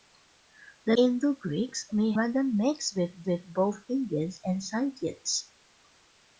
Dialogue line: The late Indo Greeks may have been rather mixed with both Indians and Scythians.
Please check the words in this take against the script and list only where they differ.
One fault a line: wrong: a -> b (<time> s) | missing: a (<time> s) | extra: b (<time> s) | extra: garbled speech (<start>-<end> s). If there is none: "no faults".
missing: late (0.9 s)
missing: have been (2.1 s)
extra: with (3.2 s)